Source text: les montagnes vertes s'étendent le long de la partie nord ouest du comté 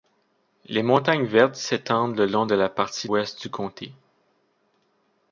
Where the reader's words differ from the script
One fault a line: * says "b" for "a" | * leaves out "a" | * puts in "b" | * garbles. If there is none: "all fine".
* leaves out "nord"